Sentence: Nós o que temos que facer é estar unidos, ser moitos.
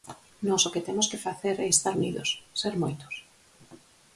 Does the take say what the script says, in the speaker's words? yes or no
yes